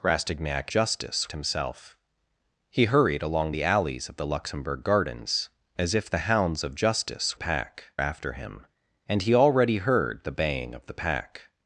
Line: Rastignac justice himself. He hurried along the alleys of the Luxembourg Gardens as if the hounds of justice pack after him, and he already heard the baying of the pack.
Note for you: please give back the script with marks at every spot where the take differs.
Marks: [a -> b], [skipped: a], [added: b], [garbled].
Rastignac justice himself. He hurried along the alleys of the Luxembourg Gardens as if the hounds of justice pack after him, and he already heard the baying of the pack.